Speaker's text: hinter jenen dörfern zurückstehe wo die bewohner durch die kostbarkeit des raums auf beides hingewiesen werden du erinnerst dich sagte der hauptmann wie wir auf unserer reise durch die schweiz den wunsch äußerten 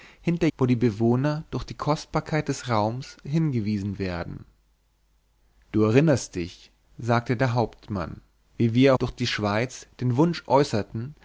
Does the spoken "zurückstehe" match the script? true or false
false